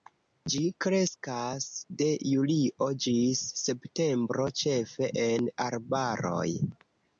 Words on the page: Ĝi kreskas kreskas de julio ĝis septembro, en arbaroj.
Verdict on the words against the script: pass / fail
fail